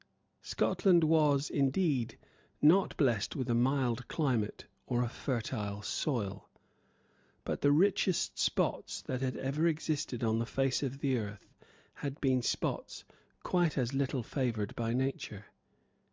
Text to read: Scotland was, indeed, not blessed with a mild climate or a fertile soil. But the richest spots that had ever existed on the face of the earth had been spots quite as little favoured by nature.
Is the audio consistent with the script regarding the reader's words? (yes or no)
yes